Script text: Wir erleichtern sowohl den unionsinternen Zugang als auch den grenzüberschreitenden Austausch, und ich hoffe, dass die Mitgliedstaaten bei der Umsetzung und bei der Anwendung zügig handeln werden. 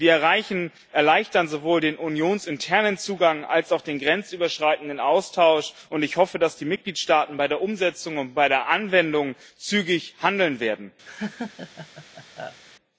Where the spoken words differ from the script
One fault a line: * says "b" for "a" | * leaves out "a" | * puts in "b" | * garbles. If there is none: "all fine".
all fine